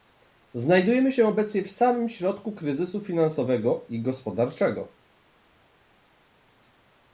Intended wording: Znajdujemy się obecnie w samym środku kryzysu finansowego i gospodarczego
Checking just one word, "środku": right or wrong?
right